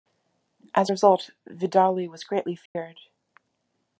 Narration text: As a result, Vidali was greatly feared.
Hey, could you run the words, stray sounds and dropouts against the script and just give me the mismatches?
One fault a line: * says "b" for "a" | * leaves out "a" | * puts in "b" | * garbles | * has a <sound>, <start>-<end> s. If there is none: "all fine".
* has a dropout, 2.7-2.8 s